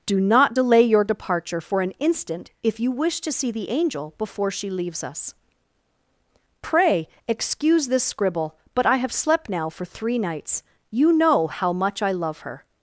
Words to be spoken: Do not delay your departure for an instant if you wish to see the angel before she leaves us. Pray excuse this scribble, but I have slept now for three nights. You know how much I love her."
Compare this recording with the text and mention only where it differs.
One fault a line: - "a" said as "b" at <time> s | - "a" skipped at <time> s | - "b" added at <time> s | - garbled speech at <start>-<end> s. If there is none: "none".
none